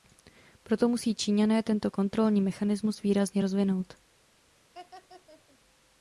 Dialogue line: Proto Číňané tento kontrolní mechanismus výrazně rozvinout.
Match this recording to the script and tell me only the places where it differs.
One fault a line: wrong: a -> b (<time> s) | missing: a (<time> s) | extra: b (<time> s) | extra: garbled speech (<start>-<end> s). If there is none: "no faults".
extra: musí (0.9 s)